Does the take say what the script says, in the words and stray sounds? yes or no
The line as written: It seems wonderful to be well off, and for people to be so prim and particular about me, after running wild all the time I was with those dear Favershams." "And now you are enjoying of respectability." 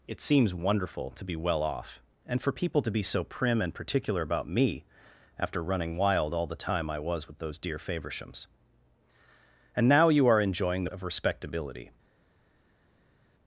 yes